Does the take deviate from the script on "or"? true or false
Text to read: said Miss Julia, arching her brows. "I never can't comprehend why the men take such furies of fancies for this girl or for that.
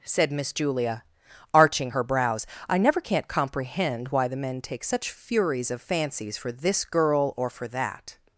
false